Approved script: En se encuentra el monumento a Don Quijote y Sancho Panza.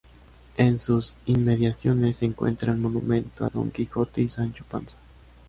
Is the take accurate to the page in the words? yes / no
no